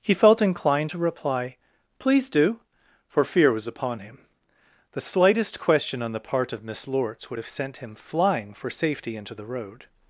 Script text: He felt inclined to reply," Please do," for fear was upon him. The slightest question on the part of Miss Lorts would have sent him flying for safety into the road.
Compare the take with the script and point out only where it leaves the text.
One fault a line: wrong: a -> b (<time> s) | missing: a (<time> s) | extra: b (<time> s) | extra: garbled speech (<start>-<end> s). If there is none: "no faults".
no faults